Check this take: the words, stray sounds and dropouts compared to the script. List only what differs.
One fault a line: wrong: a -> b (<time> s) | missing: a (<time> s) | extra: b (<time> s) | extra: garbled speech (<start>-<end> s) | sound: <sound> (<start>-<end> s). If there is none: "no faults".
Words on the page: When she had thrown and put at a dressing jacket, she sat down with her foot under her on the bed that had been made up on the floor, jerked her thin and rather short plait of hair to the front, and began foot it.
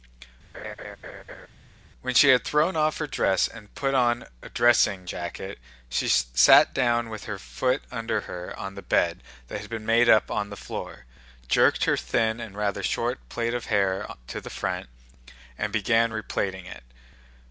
sound: laugh (0.5-1.5 s)
extra: off her dress (2.8 s)
wrong: at -> on (3.9 s)
wrong: foot -> replaiting (16.1 s)